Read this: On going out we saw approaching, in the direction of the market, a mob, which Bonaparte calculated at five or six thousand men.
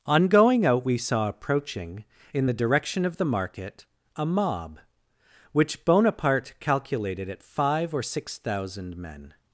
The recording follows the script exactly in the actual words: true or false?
true